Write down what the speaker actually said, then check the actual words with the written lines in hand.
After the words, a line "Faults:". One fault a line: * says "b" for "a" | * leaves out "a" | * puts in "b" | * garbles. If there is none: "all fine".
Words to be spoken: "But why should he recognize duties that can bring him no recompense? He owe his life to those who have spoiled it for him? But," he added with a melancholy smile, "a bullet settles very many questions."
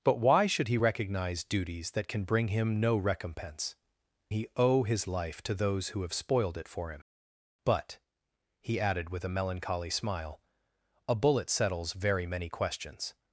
"But why should he recognize duties that can bring him no recompense? He owe his life to those who have spoiled it for him? But," he added with a melancholy smile, "a bullet settles very many questions."
Faults:
all fine